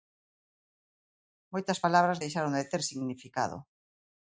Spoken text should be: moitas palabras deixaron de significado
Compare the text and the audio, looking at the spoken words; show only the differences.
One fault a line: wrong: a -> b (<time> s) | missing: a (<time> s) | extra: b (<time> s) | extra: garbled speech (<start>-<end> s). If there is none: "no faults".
extra: ter (2.7 s)